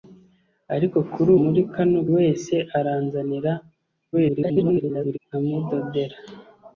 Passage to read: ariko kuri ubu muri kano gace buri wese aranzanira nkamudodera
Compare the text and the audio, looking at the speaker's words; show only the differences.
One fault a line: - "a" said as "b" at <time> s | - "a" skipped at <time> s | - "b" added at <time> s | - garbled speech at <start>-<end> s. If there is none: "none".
- "ubu" skipped at 1.3 s
- "gace buri" skipped at 2.0 s
- garbled speech at 4.1-5.2 s